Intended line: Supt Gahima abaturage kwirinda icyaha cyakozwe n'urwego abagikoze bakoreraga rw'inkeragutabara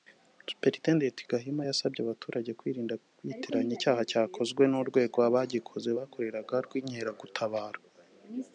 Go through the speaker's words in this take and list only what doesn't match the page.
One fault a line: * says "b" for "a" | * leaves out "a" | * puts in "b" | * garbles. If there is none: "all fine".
* puts in "yasabye"
* puts in "kwitiranya"